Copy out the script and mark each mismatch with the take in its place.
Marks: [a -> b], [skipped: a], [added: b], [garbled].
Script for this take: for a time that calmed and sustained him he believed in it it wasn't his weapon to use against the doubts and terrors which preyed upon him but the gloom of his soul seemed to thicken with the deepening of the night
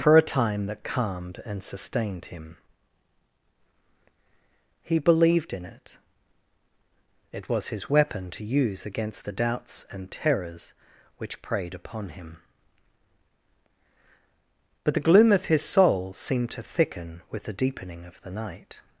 for a time that calmed and sustained him he believed in it it [wasn't -> was] his weapon to use against the doubts and terrors which preyed upon him but the gloom of his soul seemed to thicken with the deepening of the night